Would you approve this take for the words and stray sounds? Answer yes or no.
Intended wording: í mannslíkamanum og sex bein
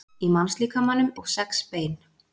yes